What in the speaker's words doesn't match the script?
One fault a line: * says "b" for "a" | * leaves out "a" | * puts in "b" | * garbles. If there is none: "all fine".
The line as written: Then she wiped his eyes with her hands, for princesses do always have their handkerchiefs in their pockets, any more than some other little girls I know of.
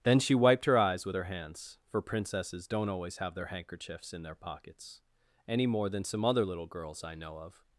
* says "her" for "his"
* says "don't" for "do"